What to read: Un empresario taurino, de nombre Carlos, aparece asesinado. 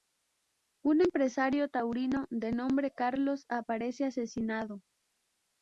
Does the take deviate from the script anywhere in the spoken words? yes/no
no